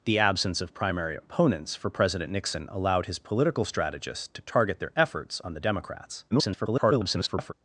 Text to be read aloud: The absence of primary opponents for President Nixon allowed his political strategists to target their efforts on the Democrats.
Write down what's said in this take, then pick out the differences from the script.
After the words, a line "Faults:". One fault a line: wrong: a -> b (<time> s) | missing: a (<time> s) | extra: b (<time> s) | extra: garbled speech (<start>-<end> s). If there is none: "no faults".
The absence of primary opponents for President Nixon allowed his political strategists to target their efforts on the Democrats. [garbled]
Faults:
extra: garbled speech (6.3-7.5 s)